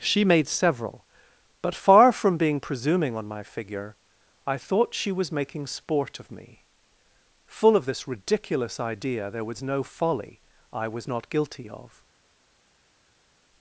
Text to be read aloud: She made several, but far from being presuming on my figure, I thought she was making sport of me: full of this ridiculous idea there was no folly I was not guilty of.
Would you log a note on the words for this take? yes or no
no